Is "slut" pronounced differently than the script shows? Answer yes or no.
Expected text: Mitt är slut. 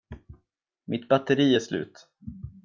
no